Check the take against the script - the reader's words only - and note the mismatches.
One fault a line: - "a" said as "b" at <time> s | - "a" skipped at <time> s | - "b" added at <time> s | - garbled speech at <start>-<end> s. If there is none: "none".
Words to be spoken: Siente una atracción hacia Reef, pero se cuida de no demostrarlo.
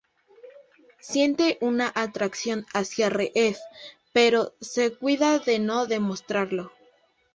none